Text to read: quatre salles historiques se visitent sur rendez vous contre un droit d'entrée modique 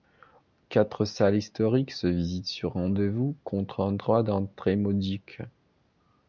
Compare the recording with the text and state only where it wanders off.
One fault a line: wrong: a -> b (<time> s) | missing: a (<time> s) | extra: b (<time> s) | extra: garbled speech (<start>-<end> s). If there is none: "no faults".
no faults